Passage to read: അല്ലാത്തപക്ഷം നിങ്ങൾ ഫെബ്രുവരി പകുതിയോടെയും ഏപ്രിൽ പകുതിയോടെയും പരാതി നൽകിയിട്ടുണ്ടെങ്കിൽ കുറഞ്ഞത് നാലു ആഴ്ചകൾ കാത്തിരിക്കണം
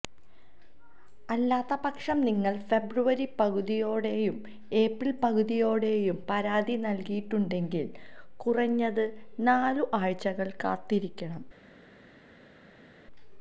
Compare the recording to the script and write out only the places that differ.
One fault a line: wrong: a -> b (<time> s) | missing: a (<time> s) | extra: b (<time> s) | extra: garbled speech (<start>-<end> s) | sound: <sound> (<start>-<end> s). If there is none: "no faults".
no faults